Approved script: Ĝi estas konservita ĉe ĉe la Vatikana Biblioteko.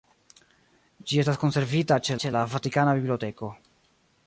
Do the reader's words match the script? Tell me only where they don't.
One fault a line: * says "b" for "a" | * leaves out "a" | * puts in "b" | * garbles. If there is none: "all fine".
all fine